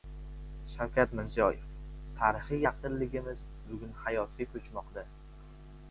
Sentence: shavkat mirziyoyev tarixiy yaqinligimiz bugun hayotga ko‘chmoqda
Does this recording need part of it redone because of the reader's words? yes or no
no